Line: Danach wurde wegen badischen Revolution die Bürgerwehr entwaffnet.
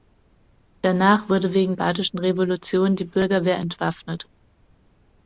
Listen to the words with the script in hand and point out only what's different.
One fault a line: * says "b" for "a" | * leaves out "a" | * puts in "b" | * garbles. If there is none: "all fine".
all fine